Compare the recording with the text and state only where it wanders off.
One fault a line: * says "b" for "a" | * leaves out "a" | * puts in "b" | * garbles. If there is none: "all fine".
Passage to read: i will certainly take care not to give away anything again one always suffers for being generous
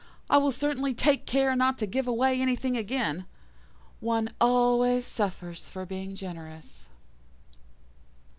all fine